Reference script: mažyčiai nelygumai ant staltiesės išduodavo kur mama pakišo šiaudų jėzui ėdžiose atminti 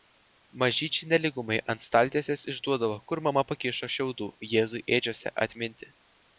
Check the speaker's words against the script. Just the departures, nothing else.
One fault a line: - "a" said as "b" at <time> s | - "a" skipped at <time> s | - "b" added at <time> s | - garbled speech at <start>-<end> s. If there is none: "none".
none